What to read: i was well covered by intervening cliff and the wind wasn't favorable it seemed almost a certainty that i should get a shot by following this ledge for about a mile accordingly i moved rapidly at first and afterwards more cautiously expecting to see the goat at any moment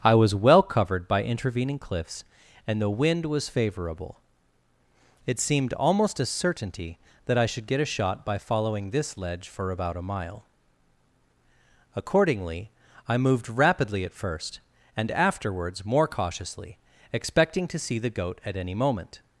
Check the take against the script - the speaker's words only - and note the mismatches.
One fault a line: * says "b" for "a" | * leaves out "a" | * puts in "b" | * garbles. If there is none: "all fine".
* says "cliffs" for "cliff"
* says "was" for "wasn't"